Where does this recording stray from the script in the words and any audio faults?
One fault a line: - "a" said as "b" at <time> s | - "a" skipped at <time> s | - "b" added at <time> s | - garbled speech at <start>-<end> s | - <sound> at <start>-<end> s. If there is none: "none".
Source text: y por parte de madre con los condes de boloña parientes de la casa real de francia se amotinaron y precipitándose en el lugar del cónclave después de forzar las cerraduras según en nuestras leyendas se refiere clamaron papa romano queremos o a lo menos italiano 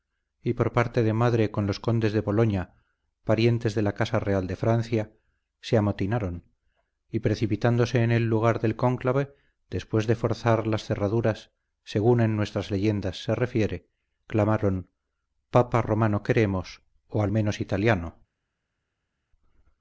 - "lo" skipped at 17.3 s